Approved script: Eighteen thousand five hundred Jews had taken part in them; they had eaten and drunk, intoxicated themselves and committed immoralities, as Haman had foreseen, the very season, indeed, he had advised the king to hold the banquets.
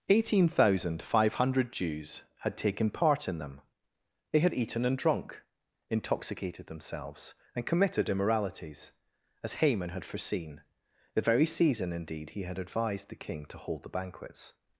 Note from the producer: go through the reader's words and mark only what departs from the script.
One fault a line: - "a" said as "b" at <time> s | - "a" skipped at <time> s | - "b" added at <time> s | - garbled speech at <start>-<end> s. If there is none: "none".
none